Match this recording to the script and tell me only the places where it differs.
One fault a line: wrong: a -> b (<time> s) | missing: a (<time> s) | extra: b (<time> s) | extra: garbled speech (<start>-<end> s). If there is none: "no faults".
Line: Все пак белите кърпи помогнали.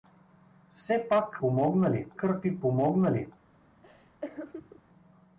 wrong: белите -> помогнали (1.4 s)